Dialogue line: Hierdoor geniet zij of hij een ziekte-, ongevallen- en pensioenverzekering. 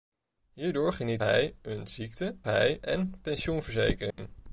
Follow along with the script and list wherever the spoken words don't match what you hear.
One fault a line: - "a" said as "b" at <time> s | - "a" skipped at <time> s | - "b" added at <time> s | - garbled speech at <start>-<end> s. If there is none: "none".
- "zij of" skipped at 1.2 s
- "ongevallen" said as "hij" at 2.4 s